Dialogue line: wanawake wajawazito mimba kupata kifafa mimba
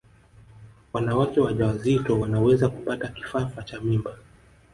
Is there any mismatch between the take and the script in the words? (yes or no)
yes